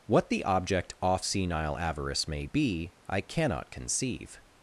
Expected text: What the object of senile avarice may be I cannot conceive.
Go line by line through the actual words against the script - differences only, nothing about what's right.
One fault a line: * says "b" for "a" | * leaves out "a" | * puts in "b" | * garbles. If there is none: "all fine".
* says "off" for "of"